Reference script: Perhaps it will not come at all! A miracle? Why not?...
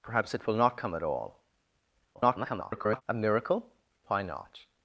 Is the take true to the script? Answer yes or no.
no